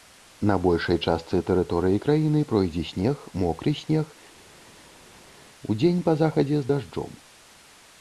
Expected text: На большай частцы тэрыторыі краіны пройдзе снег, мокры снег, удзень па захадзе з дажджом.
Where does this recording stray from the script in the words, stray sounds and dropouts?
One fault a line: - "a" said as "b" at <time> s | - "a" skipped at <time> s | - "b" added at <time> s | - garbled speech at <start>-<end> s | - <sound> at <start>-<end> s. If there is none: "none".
none